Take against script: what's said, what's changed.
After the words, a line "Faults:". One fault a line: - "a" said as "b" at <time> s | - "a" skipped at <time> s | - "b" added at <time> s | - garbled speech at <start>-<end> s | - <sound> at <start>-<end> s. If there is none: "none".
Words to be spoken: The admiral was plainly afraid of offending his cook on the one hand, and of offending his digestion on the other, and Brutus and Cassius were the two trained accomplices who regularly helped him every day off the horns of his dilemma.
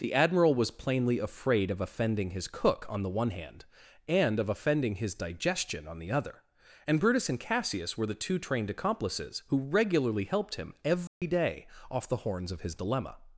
The admiral was plainly afraid of offending his cook on the one hand, and of offending his digestion on the other, and Brutus and Cassius were the two trained accomplices who regularly helped him every day off the horns of his dilemma.
Faults:
- dropout at 11.1-11.2 s